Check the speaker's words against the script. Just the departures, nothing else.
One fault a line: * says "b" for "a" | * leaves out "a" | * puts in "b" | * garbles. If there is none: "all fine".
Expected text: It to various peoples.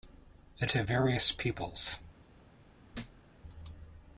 all fine